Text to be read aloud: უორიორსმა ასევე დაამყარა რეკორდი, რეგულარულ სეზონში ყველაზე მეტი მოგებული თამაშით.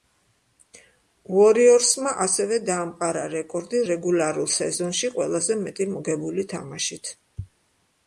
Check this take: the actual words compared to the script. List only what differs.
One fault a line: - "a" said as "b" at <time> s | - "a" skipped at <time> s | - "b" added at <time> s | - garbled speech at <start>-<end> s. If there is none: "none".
none